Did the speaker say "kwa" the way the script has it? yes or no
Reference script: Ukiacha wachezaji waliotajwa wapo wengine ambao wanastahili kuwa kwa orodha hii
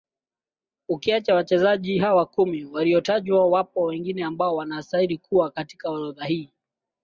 no